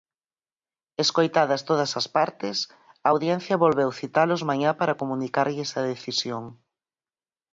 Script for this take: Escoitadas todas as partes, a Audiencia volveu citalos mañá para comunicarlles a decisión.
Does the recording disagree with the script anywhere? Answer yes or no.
no